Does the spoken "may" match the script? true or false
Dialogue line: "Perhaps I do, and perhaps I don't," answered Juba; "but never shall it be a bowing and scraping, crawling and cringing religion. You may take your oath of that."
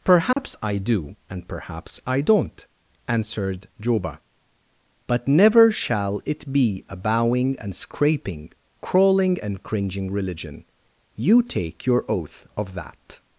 false